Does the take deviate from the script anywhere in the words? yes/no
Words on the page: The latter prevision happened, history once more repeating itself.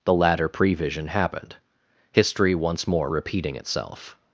no